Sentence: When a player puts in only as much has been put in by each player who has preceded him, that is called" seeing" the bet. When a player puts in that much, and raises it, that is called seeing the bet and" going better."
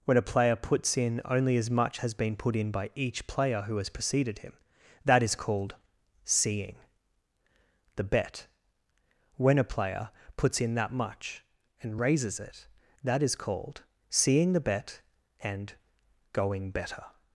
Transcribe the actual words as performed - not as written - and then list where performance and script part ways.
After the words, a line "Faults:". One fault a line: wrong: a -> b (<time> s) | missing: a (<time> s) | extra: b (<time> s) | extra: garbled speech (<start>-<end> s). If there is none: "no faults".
When a player puts in only as much has been put in by each player who has preceded him, that is called" seeing" the bet. When a player puts in that much, and raises it, that is called seeing the bet and" going better."
Faults:
no faults